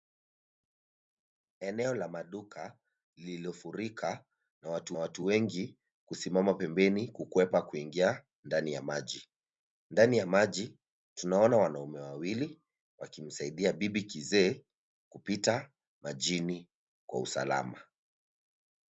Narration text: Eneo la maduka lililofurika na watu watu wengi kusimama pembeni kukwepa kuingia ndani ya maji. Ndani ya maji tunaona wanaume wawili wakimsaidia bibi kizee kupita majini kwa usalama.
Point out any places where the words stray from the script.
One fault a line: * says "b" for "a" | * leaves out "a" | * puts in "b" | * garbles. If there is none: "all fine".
all fine